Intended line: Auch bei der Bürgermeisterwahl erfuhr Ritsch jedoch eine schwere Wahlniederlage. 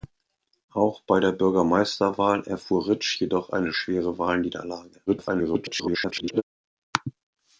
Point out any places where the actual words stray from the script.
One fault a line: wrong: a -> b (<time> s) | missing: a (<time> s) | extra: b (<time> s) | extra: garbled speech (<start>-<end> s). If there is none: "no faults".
extra: garbled speech (5.1-6.4 s)